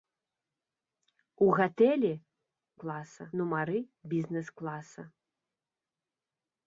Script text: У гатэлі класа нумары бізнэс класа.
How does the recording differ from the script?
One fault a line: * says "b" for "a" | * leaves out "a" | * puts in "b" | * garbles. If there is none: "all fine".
all fine